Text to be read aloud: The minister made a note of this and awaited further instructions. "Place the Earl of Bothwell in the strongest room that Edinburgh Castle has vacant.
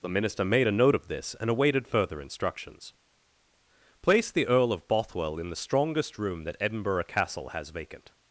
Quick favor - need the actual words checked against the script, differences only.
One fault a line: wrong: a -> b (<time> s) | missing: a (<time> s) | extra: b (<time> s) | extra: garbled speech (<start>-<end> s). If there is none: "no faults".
no faults